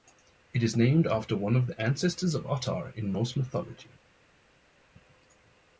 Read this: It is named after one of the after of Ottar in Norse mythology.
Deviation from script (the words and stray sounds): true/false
true